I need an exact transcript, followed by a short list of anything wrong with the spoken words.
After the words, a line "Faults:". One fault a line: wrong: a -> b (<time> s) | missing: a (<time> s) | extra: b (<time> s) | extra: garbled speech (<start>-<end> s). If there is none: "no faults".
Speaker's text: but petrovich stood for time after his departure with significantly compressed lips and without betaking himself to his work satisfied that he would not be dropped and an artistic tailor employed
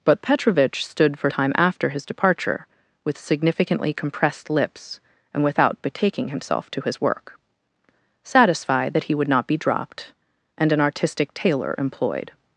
but petrovich stood for time after his departure with significantly compressed lips and without betaking himself to his work satisfied that he would not be dropped and an artistic tailor employed
Faults:
no faults